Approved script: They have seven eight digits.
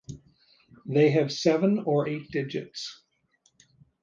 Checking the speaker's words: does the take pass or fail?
fail